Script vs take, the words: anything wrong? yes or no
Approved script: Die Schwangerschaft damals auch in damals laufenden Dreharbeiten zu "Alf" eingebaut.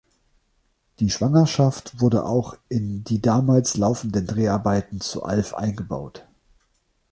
yes